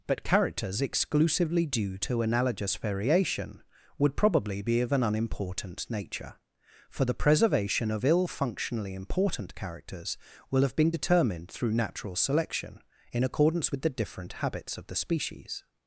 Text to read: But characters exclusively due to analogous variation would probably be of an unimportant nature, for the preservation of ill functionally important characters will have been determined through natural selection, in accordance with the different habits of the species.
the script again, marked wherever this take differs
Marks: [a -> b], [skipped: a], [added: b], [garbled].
But characters exclusively due to analogous variation would probably be of an unimportant nature, for the preservation of ill functionally important characters will have been determined through natural selection, in accordance with the different habits of the species.